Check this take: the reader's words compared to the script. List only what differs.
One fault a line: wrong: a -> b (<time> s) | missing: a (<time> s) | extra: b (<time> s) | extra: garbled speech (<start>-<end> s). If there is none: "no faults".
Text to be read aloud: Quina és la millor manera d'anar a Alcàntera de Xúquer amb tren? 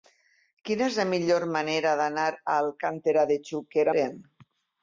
missing: amb (3.9 s)